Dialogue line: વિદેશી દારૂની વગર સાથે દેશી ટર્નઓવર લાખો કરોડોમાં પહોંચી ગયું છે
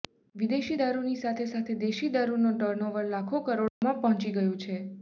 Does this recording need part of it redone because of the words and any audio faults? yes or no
yes